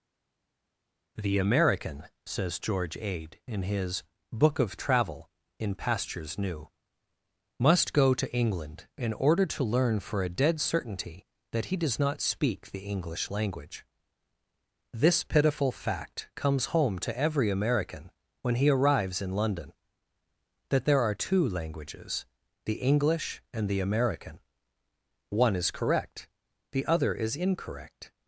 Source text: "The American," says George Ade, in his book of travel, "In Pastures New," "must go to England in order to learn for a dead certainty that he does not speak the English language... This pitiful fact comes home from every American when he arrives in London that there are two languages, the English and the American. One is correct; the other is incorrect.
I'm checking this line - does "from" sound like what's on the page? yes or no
no